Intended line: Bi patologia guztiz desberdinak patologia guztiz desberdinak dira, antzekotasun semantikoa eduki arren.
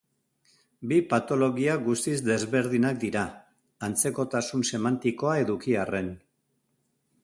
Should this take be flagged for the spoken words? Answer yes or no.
yes